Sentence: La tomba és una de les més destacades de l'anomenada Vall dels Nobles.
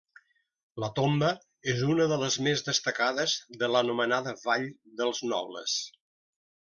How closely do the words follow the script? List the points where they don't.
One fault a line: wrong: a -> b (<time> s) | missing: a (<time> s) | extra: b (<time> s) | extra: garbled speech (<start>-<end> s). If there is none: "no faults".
no faults